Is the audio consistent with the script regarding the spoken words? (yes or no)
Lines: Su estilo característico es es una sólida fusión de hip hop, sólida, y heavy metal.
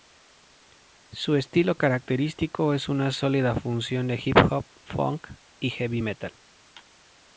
no